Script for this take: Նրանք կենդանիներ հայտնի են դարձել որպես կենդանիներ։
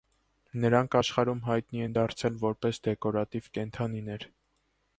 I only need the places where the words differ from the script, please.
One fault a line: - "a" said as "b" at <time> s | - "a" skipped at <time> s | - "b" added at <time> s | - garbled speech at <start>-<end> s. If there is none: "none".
- "կենդանիներ" said as "աշխարհում" at 1.0 s
- "դեկորատիվ" added at 2.9 s